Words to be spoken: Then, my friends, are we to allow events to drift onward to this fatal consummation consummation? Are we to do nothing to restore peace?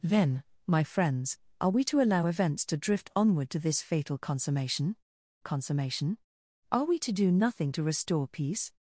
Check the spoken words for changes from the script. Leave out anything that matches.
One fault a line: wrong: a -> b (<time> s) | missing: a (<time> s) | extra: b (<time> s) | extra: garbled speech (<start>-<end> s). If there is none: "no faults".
no faults